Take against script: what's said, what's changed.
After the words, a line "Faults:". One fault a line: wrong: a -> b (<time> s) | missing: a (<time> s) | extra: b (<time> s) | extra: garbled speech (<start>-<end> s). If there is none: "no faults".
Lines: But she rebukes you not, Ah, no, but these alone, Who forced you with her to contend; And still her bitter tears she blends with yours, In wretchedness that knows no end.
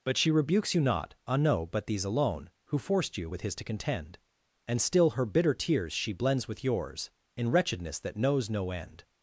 But she rebukes you not, Ah, no, but these alone, Who forced you with his to contend; And still her bitter tears she blends with yours, In wretchedness that knows no end.
Faults:
wrong: her -> his (3.4 s)